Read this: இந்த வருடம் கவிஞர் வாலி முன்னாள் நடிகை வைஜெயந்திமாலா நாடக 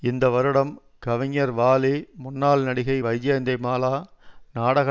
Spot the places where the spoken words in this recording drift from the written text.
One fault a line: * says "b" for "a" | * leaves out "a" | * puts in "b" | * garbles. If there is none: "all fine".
all fine